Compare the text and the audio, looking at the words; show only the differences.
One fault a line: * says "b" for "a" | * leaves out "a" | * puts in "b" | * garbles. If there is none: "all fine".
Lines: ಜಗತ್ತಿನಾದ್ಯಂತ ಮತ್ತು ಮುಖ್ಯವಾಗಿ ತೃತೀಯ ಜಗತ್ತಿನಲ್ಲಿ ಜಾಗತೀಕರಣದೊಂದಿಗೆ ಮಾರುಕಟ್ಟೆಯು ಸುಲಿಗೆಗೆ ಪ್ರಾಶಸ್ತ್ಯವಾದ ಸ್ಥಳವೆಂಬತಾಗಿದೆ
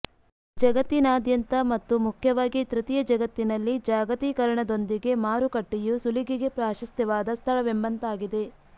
all fine